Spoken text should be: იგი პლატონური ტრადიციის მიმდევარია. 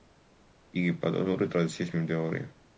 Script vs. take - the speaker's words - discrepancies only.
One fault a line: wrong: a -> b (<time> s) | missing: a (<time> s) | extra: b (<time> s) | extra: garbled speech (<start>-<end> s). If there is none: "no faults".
no faults